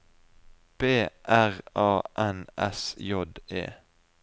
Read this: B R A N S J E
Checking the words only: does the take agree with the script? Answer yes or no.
yes